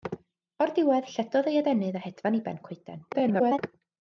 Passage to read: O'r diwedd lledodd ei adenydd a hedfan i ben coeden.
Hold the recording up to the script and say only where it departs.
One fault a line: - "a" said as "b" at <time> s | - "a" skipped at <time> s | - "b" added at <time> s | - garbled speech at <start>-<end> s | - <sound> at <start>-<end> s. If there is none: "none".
- garbled speech at 3.1-3.6 s